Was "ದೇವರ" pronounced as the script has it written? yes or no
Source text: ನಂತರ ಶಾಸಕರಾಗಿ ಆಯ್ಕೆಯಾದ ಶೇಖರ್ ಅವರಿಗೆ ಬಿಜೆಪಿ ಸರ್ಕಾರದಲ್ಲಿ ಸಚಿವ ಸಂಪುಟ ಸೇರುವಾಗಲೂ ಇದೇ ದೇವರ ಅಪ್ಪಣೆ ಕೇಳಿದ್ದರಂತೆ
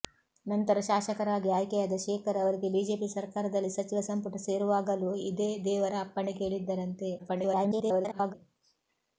yes